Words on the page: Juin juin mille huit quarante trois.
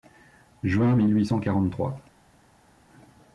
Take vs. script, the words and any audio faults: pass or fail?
fail